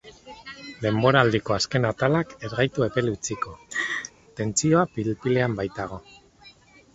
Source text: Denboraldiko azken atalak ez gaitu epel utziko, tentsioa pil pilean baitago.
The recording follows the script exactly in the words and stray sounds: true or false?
false